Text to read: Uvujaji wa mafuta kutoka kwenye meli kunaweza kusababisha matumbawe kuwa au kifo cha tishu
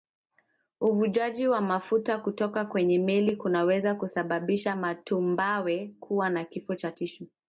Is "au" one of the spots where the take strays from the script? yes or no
yes